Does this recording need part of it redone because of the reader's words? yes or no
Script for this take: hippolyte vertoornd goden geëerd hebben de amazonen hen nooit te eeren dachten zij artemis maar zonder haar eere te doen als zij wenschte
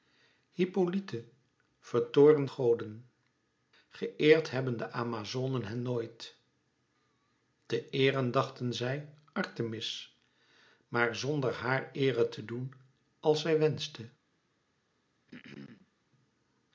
no